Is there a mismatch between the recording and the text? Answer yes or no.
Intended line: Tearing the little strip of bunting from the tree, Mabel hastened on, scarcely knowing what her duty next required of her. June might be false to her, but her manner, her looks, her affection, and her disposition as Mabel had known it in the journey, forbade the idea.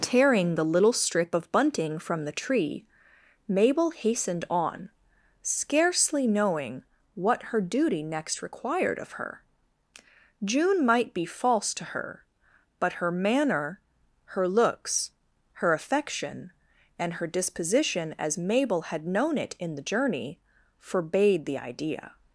no